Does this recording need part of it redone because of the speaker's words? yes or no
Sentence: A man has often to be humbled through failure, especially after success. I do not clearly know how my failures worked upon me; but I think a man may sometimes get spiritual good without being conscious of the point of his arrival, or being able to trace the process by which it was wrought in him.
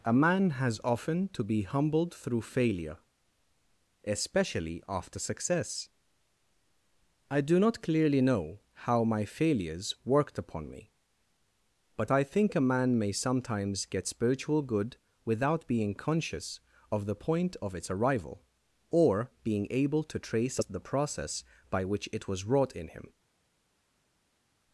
yes